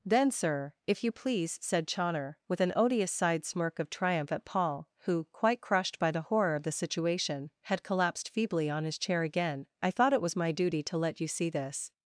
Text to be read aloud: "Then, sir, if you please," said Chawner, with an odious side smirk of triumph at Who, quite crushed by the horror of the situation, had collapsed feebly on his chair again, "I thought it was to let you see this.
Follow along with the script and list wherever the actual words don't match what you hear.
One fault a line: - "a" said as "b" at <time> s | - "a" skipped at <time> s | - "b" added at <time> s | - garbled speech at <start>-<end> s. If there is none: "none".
- "Paul" added at 4.5 s
- "my duty" added at 10.3 s